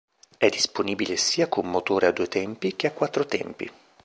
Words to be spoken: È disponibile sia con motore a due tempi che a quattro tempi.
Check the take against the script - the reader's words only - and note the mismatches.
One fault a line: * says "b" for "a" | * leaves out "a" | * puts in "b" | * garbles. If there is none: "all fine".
all fine